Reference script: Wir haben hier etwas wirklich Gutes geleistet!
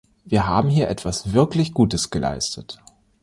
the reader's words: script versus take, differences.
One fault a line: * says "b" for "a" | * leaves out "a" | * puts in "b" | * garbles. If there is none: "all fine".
all fine